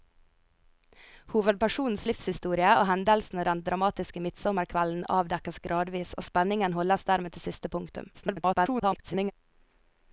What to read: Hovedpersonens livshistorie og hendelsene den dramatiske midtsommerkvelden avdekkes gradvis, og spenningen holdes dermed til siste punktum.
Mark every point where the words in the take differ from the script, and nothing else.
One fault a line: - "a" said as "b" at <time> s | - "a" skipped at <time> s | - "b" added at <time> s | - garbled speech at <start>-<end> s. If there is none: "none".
- garbled speech at 8.1-9.3 s